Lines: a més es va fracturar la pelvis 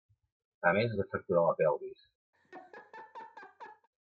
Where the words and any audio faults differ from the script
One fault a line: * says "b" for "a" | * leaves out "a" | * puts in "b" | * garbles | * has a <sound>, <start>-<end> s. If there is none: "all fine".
* has a laugh, 2.3-3.9 s